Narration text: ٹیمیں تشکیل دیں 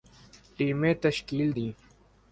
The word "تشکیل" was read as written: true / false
true